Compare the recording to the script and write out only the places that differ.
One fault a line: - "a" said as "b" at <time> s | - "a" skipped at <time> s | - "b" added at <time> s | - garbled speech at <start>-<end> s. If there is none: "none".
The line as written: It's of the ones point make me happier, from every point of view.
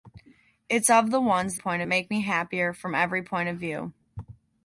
none